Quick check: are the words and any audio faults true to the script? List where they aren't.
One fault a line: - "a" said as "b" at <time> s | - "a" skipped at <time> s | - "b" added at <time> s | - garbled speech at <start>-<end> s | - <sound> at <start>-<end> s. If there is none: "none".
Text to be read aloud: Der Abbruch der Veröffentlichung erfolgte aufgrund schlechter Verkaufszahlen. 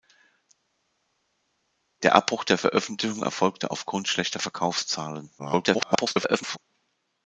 - garbled speech at 5.4-6.6 s